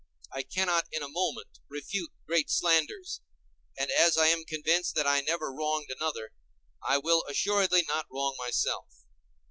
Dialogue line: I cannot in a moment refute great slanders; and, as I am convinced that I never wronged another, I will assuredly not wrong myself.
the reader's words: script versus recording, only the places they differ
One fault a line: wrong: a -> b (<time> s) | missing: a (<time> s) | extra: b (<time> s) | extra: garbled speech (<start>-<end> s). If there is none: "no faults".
no faults